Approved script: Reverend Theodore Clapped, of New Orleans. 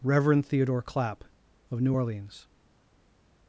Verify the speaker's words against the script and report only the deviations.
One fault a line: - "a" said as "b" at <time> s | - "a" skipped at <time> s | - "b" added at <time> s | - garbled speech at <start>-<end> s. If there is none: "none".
- "Clapped" said as "Clapp" at 0.8 s